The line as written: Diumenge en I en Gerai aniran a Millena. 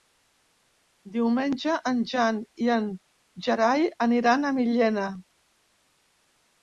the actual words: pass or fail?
fail